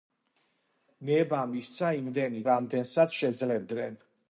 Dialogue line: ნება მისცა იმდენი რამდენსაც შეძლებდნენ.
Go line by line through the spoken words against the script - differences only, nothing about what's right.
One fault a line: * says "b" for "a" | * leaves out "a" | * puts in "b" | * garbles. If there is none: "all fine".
all fine